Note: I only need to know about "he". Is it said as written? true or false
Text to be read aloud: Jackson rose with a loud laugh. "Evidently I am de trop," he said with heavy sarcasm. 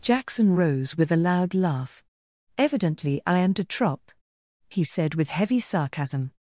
true